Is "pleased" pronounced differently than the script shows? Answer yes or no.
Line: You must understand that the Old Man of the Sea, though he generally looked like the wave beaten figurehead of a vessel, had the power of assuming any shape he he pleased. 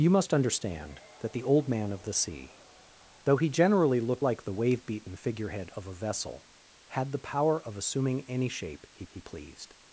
no